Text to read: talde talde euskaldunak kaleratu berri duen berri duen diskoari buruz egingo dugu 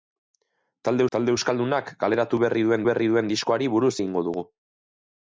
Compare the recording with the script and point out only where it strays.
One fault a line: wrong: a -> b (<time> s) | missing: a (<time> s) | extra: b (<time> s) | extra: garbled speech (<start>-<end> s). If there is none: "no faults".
no faults